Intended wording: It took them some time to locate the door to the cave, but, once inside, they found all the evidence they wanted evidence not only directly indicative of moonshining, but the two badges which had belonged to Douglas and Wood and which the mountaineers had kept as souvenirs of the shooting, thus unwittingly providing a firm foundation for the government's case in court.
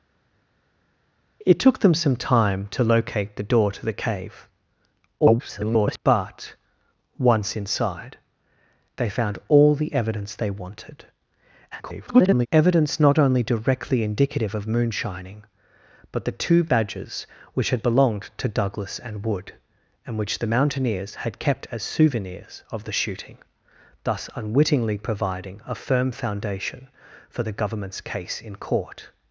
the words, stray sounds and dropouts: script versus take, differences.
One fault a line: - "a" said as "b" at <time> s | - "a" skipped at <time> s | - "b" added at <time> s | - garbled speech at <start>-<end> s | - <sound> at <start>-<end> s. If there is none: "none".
- garbled speech at 5.2-6.0 s
- garbled speech at 11.7-12.5 s